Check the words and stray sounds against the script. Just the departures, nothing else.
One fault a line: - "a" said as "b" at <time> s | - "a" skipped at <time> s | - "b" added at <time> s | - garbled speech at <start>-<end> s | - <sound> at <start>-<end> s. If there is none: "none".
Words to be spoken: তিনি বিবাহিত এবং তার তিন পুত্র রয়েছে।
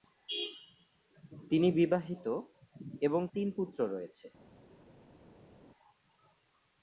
- "তার" skipped at 3.2 s